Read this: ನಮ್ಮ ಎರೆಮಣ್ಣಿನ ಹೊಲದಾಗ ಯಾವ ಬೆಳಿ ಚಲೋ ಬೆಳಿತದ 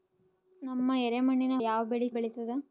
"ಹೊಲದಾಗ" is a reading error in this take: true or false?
true